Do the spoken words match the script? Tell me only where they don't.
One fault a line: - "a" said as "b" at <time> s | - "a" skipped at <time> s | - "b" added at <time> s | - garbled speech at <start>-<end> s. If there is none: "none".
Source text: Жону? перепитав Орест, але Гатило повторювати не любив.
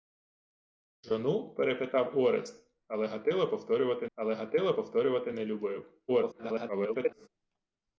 - "але Гатило повторювати" added at 4.1 s
- garbled speech at 6.1-7.3 s